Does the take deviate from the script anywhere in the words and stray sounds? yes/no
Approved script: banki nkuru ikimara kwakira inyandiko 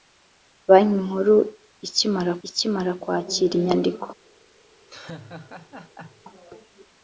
yes